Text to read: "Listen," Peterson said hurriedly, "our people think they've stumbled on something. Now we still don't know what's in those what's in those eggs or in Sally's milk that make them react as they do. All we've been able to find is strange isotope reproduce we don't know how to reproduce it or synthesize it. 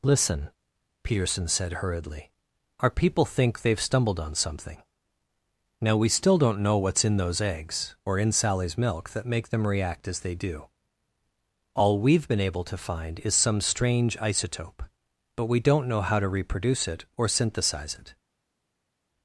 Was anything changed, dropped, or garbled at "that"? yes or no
no